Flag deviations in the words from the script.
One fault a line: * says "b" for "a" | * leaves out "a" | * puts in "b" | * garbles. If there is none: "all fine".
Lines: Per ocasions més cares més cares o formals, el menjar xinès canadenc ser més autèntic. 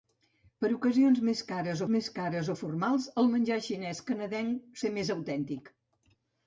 all fine